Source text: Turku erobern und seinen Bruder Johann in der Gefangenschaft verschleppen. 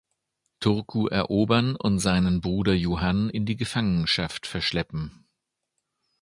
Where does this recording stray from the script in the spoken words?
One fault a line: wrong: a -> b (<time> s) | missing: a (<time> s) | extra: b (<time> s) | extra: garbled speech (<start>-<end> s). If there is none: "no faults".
wrong: der -> die (3.5 s)